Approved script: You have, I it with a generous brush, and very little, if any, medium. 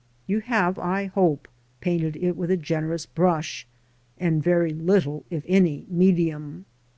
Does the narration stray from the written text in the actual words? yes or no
yes